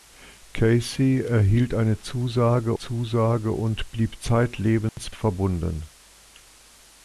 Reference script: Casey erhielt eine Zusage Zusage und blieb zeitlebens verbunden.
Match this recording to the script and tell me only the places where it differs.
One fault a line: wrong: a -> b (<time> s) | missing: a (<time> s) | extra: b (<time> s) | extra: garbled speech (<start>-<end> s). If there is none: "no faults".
no faults